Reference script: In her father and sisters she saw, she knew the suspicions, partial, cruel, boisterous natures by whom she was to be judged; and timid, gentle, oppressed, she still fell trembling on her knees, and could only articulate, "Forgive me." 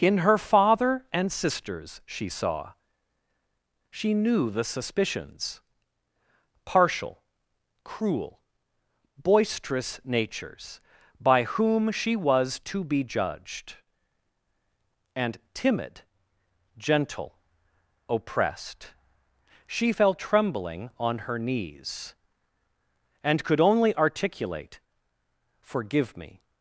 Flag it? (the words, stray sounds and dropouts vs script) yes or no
yes